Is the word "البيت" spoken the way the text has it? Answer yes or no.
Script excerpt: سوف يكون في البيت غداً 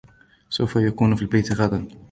yes